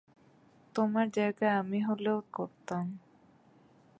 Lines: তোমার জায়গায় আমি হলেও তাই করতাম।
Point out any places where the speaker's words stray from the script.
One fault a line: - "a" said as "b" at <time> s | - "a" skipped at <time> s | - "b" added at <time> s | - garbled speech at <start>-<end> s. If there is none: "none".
- "তাই" skipped at 2.2 s